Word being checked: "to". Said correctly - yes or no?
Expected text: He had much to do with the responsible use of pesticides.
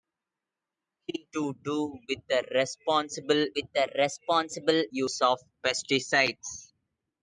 no